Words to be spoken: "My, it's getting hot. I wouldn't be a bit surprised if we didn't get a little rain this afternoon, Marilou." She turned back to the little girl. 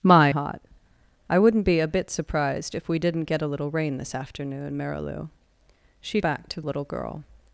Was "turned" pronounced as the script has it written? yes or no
no